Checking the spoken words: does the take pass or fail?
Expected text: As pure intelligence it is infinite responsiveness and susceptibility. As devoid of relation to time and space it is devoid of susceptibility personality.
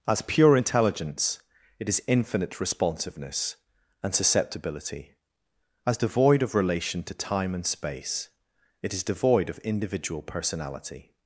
fail